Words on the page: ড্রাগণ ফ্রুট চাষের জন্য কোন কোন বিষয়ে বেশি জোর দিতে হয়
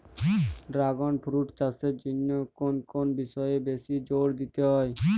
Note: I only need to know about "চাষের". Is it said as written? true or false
true